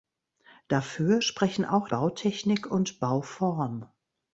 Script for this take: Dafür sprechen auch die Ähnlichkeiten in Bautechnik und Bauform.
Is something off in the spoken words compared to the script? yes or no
yes